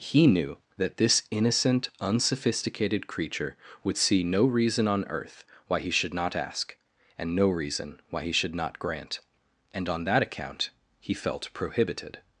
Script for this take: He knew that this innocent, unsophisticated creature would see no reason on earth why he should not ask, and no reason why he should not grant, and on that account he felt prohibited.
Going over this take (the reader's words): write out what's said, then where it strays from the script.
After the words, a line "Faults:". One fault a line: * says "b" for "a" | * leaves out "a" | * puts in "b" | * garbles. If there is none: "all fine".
He knew that this innocent, unsophisticated creature would see no reason on earth why he should not ask, and no reason why he should not grant, and on that account he felt prohibited.
Faults:
all fine